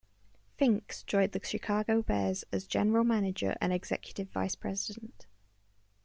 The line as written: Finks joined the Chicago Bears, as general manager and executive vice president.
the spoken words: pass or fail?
pass